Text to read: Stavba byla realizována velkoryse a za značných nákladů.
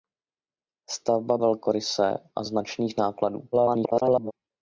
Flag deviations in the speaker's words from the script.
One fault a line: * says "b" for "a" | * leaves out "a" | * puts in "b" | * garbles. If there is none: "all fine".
* leaves out "byla realizována"
* leaves out "za"
* garbles